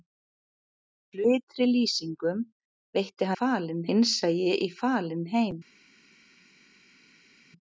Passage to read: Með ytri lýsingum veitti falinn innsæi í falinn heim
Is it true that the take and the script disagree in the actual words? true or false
false